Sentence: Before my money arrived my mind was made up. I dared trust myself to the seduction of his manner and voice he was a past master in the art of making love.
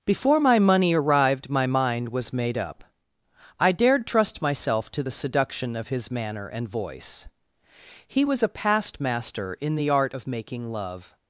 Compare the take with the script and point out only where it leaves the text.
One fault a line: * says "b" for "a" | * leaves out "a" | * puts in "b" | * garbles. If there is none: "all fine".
all fine